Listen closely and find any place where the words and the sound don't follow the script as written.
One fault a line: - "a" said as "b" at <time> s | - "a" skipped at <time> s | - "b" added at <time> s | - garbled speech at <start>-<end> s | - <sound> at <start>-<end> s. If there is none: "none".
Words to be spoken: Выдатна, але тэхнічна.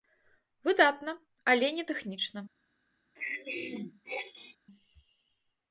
- "не" added at 1.8 s
- throat clearing at 3.1-4.6 s